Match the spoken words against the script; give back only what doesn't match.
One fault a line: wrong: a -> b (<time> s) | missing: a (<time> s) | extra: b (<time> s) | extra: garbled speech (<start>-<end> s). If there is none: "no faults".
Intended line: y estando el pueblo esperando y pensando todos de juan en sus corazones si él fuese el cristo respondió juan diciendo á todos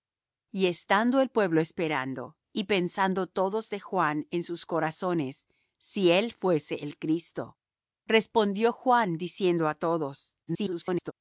extra: garbled speech (10.5-11.1 s)